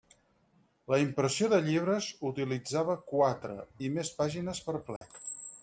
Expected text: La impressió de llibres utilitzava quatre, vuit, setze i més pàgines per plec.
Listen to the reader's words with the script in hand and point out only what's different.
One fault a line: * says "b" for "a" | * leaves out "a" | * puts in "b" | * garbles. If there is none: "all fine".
* leaves out "vuit setze"